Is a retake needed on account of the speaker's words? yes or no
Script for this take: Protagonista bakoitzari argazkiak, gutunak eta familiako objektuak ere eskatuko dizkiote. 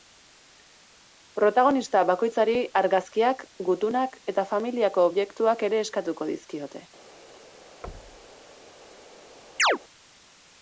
no